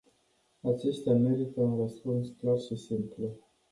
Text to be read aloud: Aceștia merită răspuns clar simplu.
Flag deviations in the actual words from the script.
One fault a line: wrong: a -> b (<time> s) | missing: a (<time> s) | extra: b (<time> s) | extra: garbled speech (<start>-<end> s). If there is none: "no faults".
extra: un (1.6 s)
extra: și (2.6 s)